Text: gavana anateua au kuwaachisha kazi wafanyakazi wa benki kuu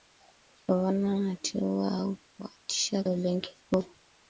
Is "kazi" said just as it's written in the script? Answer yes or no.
no